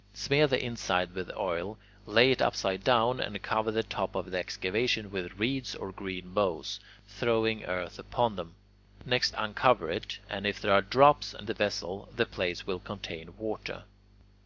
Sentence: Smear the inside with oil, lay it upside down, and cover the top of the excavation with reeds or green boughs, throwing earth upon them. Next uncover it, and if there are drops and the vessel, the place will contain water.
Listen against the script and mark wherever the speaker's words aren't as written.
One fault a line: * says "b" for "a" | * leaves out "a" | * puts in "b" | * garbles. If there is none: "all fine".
all fine